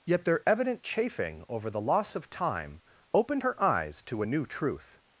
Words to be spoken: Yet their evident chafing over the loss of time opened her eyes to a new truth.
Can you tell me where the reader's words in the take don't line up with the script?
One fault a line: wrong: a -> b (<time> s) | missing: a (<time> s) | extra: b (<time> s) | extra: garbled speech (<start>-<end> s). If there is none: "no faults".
no faults